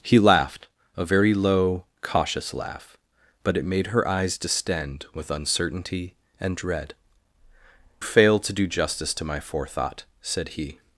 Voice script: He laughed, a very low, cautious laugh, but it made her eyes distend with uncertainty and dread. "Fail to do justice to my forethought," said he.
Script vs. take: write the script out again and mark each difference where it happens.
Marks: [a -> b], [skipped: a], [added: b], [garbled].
He laughed, a very low, cautious laugh, but it made her eyes distend with uncertainty and dread. "Fail to do justice to my forethought," said he.